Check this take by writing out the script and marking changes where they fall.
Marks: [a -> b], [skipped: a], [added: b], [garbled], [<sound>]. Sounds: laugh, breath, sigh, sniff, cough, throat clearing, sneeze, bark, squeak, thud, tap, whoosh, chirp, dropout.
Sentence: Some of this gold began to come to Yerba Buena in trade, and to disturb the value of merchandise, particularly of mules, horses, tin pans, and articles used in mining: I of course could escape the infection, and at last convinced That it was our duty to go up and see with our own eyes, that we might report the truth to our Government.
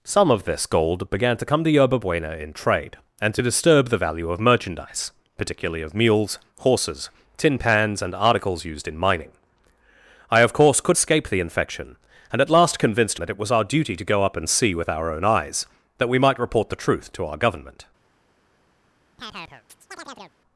Some of this gold began to come to Yerba Buena in trade, and to disturb the value of merchandise, particularly of mules, horses, tin pans, and articles used in mining: I of course could escape the infection, and at last convinced That it was our duty to go up and see with our own eyes, that we might report the truth to our Government. [chirp]